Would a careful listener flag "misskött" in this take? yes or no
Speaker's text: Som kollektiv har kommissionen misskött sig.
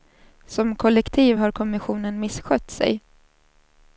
no